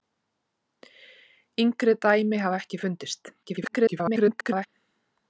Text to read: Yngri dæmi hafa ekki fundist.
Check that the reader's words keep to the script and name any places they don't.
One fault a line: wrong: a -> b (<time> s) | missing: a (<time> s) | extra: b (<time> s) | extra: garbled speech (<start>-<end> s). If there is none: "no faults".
extra: garbled speech (3.4-4.7 s)